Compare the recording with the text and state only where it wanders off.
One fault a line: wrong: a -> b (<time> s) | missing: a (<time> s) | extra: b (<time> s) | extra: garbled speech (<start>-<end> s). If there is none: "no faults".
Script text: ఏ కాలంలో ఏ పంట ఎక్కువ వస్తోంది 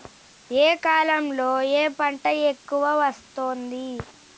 no faults